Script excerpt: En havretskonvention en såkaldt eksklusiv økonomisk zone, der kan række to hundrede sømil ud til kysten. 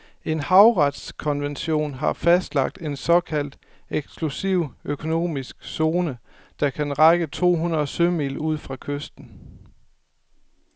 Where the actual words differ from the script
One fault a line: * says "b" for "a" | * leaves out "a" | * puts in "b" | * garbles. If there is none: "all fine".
* puts in "har fastlagt"
* says "fra" for "til"